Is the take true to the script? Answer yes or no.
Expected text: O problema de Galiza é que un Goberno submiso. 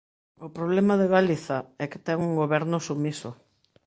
no